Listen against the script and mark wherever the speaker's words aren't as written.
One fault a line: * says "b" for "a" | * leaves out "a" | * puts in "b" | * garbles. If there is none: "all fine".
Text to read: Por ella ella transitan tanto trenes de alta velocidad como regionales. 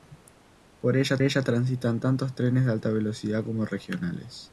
all fine